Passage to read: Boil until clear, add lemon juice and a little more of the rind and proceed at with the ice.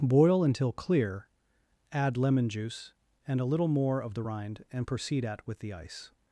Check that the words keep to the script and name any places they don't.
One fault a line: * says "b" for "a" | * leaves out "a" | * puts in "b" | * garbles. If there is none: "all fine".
all fine